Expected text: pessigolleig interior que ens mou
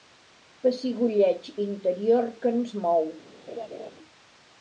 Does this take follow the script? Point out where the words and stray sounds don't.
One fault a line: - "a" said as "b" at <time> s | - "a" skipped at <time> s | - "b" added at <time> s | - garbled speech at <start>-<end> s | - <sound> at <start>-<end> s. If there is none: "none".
- laugh at 3.5-3.9 s